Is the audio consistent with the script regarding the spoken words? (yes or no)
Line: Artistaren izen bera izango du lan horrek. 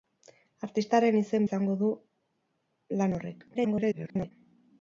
no